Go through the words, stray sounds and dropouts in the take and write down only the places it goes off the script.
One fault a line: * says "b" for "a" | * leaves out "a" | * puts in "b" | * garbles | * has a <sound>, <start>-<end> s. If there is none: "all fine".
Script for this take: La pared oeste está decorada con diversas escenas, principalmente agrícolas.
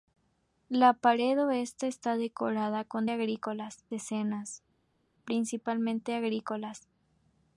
* says "agrícolas" for "diversas"